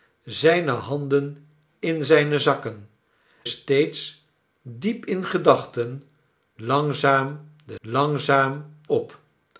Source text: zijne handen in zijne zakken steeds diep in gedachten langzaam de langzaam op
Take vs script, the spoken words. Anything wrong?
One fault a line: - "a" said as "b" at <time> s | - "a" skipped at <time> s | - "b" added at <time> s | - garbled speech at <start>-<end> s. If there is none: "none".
none